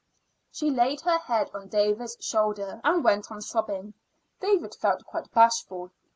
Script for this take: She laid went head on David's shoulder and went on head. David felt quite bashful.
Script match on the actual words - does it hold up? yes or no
no